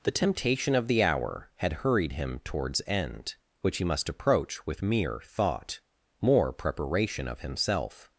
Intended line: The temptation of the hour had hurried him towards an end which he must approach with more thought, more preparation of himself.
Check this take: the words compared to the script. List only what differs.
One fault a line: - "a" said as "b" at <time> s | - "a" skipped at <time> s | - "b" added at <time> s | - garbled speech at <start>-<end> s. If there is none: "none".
- "an" skipped at 2.8 s
- "more" said as "mere" at 4.8 s